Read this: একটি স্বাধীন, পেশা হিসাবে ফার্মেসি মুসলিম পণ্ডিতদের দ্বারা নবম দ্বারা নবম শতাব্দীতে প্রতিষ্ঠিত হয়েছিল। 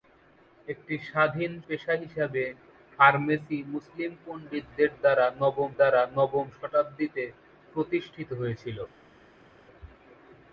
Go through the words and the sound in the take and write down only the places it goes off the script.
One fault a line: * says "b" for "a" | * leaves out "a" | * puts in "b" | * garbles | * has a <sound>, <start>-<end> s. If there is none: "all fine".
all fine